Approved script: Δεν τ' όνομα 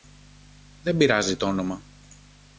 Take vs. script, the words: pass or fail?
fail